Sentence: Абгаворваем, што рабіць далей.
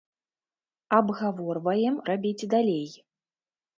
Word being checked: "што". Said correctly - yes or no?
no